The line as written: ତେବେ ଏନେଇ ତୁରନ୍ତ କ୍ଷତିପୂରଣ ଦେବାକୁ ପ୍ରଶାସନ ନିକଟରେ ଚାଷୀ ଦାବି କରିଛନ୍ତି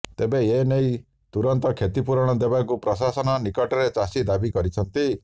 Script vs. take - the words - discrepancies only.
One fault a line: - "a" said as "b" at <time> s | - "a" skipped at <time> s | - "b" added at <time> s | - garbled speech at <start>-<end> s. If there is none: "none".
none